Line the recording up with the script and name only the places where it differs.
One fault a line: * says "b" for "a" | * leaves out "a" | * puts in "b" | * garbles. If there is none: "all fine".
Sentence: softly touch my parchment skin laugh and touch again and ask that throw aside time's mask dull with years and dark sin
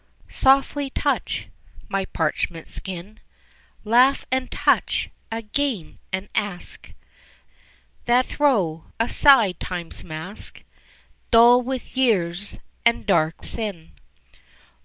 all fine